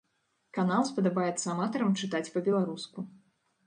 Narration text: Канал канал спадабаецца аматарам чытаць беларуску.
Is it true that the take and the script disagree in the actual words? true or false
true